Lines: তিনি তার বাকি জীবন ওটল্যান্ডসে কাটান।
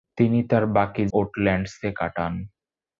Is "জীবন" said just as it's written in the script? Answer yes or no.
no